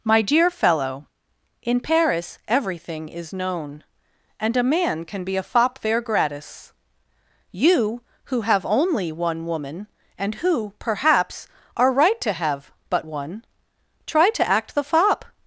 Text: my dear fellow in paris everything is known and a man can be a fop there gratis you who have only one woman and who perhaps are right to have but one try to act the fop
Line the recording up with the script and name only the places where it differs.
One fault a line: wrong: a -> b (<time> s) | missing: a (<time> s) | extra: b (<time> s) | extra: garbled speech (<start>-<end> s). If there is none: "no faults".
no faults